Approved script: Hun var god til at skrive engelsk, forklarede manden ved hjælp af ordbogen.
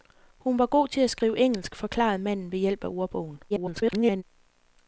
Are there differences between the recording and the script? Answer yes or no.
yes